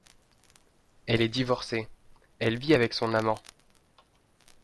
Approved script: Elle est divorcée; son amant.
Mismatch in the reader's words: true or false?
true